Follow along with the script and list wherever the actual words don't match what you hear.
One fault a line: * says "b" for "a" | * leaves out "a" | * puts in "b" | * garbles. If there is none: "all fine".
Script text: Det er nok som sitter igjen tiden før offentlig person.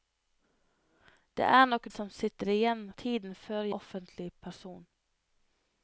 all fine